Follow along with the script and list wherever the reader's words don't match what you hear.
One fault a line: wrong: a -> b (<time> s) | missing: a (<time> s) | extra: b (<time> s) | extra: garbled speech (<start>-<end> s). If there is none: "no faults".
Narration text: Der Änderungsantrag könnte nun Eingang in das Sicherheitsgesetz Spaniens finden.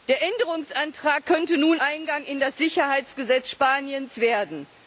no faults